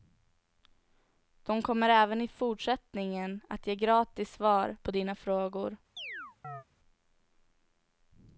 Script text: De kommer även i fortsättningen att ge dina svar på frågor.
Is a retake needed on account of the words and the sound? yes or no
yes